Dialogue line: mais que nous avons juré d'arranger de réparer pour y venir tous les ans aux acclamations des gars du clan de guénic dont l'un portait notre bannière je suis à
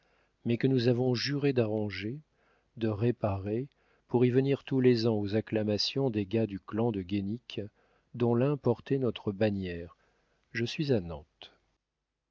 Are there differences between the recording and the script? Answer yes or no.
no